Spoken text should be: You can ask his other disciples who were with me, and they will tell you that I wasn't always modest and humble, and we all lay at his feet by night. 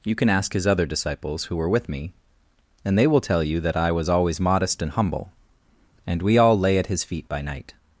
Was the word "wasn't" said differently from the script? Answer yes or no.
yes